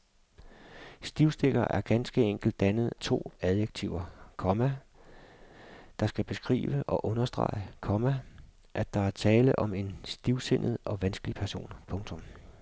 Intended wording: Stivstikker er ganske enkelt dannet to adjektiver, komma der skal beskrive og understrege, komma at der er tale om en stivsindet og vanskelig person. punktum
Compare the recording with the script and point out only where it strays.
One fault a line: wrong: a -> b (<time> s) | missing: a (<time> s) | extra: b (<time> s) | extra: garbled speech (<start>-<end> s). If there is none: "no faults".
no faults